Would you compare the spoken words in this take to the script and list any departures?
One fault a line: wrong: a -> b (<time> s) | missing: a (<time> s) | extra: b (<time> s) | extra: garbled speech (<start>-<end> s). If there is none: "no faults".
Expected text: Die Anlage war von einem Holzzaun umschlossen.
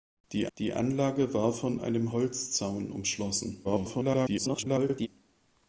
extra: die (0.6 s)
extra: garbled speech (3.6-5.1 s)